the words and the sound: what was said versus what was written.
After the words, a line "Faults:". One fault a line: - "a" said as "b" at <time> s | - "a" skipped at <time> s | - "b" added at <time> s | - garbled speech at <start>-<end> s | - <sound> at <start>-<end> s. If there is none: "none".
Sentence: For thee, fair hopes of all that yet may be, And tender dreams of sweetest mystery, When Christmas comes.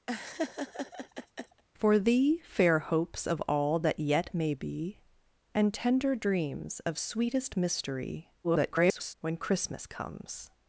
For thee, fair hopes of all that yet may be, And tender dreams of sweetest mystery, [garbled] When Christmas comes.
Faults:
- laugh at 0.1-1.6 s
- garbled speech at 8.4-9.1 s